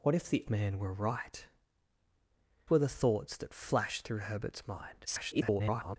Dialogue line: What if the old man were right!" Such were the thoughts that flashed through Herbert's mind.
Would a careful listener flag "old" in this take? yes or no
yes